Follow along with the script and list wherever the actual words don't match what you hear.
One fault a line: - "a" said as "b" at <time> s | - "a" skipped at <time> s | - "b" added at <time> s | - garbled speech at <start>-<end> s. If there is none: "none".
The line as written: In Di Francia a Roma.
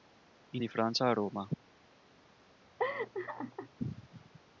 none